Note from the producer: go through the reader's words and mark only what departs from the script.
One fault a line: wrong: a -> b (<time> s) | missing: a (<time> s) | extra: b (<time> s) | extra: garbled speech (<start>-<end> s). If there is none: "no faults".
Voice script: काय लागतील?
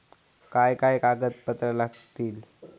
extra: काय कागदपत्रा (0.7 s)